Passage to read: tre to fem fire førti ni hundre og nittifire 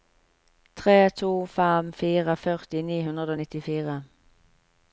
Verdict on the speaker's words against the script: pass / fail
pass